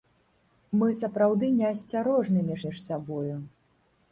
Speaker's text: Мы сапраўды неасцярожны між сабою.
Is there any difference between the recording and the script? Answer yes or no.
yes